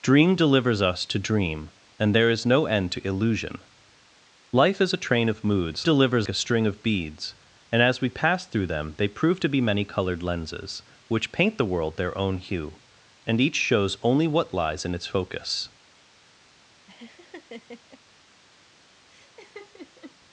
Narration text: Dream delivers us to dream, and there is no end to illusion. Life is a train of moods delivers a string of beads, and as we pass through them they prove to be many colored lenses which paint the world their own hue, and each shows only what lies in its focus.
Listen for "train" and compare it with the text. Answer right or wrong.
right